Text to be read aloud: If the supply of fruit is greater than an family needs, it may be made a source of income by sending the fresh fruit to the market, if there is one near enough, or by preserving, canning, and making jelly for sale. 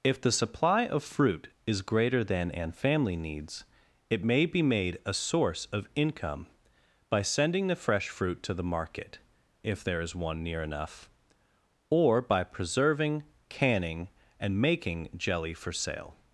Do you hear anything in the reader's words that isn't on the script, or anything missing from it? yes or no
no